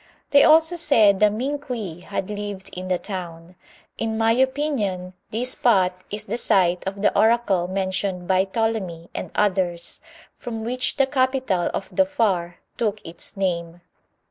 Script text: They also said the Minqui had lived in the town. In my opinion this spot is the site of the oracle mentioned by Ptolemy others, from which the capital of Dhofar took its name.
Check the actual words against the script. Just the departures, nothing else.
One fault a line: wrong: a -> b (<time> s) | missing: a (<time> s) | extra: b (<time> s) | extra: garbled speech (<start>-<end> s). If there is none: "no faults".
extra: and (9.2 s)